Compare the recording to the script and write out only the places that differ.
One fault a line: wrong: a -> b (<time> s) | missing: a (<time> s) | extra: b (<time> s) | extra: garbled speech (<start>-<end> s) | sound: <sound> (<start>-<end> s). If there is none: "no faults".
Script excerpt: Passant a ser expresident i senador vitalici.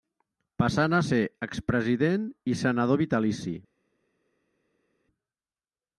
no faults